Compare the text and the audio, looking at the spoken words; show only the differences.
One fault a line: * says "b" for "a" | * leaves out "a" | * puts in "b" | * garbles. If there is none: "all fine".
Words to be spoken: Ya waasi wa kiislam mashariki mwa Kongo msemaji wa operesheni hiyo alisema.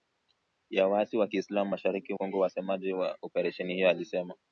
* leaves out "mwa"